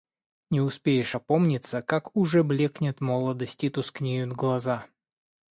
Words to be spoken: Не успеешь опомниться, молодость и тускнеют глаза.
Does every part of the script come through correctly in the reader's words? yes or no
no